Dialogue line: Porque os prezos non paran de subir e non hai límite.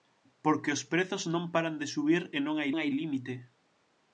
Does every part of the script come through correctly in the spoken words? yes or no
no